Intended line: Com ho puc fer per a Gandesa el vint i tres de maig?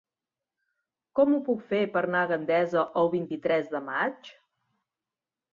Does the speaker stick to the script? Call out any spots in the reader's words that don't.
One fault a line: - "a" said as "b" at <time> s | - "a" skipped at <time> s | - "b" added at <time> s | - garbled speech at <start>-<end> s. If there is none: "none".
- "anar" added at 2.1 s